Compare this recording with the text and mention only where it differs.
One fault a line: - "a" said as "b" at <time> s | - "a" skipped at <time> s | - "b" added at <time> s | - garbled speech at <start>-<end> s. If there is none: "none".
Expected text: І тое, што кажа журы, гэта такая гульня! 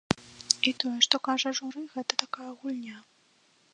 none